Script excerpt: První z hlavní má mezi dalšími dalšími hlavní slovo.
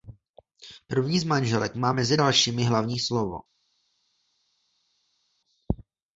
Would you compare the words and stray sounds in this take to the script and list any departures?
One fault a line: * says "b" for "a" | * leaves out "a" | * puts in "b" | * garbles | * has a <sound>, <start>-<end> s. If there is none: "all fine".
* says "manželek" for "hlavní"
* leaves out "dalšími"